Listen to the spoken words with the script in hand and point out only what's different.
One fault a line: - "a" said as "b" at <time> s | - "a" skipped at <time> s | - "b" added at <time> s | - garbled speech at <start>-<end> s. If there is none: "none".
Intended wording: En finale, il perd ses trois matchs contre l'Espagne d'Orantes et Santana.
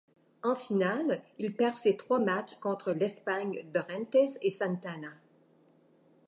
none